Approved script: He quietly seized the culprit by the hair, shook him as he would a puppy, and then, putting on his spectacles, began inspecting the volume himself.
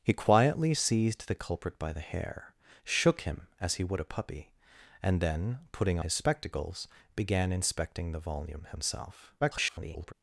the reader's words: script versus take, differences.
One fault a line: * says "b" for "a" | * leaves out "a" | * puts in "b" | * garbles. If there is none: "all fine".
* leaves out "on"
* garbles